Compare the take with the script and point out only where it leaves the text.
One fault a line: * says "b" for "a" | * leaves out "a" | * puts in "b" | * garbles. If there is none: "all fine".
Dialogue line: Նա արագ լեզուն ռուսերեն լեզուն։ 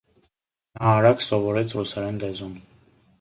* says "սովորեց" for "լեզուն"